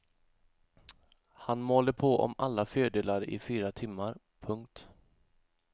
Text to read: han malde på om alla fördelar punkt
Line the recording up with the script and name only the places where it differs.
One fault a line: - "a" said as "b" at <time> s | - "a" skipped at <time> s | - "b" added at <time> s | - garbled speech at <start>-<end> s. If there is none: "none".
- "i fyra timmar" added at 3.3 s